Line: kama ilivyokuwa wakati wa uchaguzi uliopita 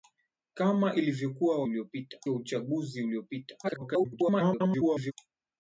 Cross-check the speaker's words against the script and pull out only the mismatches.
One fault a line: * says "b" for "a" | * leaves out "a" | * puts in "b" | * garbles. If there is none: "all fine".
* says "uliopita" for "wakati"
* garbles